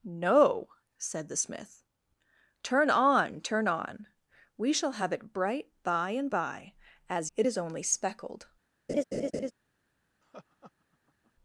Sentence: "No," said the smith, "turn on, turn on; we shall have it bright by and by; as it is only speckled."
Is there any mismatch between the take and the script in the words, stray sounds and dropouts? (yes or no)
yes